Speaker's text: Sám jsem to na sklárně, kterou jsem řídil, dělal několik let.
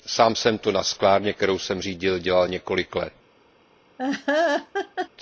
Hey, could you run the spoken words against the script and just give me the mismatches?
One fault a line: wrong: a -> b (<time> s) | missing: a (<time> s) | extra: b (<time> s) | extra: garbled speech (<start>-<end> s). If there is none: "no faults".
no faults